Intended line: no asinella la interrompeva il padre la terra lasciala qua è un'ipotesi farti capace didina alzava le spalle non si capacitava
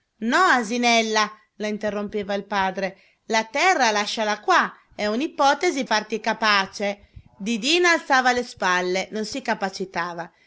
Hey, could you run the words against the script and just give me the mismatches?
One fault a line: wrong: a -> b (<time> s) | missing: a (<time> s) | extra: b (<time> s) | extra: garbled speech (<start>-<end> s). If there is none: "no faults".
no faults